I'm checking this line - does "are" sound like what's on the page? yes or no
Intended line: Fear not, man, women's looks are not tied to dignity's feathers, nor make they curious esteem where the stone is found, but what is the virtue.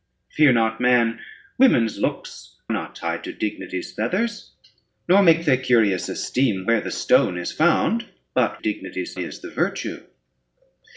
no